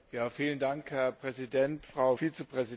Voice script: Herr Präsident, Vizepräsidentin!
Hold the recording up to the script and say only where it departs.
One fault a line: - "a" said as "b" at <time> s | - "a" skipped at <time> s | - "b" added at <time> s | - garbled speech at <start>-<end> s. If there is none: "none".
- "Frau" added at 1.8 s